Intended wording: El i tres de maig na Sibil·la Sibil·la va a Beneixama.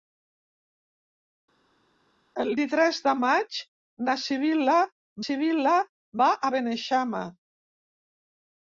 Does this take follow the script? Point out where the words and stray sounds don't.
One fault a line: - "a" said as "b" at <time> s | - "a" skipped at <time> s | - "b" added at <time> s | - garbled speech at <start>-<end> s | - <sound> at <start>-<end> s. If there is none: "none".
none